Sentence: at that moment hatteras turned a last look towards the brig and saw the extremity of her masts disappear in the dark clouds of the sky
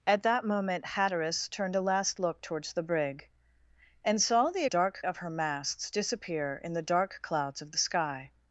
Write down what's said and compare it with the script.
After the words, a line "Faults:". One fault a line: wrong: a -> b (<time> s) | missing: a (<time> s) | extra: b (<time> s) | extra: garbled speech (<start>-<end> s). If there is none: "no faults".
at that moment hatteras turned a last look towards the brig and saw the dark of her masts disappear in the dark clouds of the sky
Faults:
wrong: extremity -> dark (4.6 s)